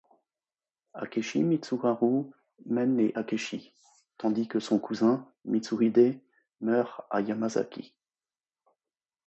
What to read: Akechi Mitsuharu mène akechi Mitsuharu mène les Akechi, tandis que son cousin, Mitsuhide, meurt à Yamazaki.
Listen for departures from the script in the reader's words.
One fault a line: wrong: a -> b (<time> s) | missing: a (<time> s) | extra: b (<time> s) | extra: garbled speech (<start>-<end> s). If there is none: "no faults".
missing: akechi Mitsuharu mène (3.0 s)